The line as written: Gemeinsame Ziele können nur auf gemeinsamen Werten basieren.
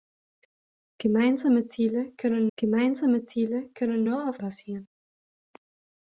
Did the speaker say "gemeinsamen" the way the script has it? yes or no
no